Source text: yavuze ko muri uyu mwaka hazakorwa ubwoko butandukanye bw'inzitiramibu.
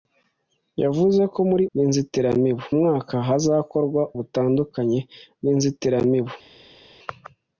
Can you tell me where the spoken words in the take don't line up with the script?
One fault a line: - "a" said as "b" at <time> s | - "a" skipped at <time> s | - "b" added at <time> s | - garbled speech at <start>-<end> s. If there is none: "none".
- "uyu" said as "bw'inzitiramibu" at 1.7 s
- "ubwoko" skipped at 4.0 s